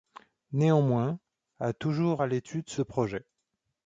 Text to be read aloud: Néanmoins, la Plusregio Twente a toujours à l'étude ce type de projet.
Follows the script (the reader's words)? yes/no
no